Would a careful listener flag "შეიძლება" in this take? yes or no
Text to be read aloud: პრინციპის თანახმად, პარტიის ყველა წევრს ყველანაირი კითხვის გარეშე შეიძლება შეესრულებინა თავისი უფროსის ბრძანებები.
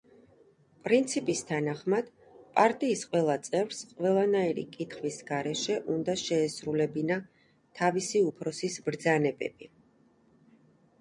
yes